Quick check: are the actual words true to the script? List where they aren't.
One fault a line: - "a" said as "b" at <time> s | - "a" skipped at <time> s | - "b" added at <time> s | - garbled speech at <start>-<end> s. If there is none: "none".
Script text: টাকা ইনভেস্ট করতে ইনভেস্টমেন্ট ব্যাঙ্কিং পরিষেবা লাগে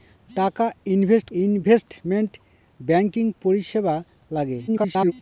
- "করতে" skipped at 1.3 s
- garbled speech at 4.7-5.1 s